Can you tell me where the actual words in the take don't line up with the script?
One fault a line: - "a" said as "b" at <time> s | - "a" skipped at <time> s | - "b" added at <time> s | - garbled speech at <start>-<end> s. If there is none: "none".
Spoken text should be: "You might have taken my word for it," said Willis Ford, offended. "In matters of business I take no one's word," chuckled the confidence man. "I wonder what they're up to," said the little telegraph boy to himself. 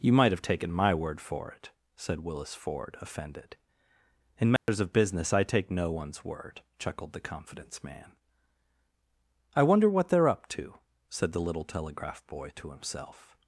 none